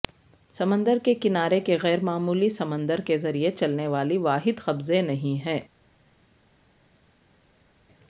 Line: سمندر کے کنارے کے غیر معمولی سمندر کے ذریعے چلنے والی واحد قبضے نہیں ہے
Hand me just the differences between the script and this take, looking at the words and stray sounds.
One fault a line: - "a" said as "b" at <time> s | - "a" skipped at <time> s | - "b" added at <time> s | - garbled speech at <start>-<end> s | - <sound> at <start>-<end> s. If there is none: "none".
none